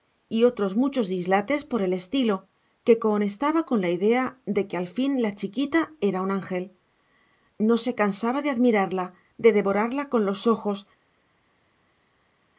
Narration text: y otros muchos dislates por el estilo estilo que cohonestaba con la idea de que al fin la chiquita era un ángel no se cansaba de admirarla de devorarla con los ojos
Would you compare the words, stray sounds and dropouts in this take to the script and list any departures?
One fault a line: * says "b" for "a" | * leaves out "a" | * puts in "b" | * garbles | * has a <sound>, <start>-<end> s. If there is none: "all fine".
* leaves out "estilo"